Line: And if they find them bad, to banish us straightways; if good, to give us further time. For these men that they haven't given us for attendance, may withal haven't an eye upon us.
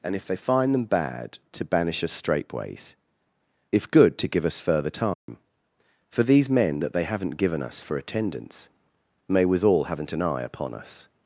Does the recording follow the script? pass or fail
pass